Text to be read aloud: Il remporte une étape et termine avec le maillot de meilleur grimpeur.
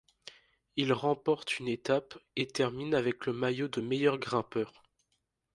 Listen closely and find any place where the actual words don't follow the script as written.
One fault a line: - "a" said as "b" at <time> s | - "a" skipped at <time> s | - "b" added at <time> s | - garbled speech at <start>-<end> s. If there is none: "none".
none